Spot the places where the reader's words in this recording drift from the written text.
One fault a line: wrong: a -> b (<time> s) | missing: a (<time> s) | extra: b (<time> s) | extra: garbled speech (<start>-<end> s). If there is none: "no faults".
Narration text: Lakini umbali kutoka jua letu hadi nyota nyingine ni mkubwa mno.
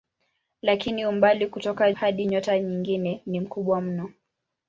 missing: jua letu (1.9 s)